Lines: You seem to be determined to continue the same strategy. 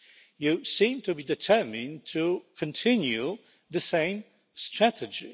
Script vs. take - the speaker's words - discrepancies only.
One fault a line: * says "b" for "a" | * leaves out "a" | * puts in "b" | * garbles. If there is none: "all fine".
all fine